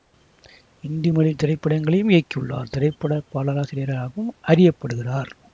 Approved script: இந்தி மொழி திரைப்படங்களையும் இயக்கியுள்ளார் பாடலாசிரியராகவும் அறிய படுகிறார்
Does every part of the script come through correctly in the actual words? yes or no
no